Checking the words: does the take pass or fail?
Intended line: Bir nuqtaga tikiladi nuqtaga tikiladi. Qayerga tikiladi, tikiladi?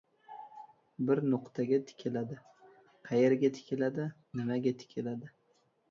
fail